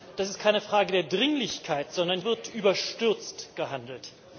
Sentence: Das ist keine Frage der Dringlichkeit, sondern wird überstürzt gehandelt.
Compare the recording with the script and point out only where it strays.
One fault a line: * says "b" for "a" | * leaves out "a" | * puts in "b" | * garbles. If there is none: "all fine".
all fine